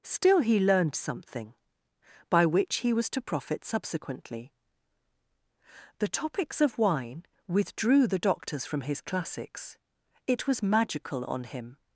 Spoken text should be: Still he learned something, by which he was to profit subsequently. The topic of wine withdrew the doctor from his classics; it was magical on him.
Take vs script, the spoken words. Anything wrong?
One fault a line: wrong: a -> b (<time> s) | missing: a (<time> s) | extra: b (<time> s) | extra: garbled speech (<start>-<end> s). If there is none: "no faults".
wrong: topic -> topics (6.1 s)
wrong: doctor -> doctors (8.2 s)